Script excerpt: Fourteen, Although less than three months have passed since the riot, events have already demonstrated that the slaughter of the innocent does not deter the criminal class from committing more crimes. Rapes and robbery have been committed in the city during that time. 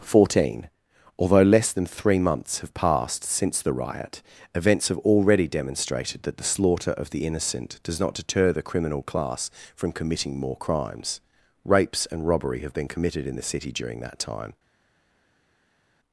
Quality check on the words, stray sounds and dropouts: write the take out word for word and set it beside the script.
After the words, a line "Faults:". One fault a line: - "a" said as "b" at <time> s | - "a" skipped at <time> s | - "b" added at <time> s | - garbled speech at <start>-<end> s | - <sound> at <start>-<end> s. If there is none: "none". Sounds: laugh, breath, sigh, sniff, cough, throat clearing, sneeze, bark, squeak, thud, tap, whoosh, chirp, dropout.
Fourteen, Although less than three months have passed since the riot, events have already demonstrated that the slaughter of the innocent does not deter the criminal class from committing more crimes. Rapes and robbery have been committed in the city during that time.
Faults:
none